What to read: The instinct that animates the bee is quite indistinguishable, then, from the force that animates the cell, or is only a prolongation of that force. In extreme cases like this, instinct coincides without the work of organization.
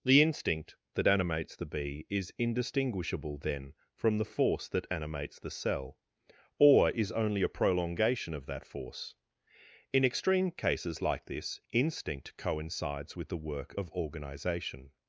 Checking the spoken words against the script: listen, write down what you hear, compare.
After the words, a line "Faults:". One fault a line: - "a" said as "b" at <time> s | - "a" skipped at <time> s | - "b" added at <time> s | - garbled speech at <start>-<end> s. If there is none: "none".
The instinct that animates the bee is indistinguishable, then, from the force that animates the cell, or is only a prolongation of that force. In extreme cases like this, instinct coincides with the work of organization.
Faults:
- "quite" skipped at 2.3 s
- "without" said as "with" at 13.2 s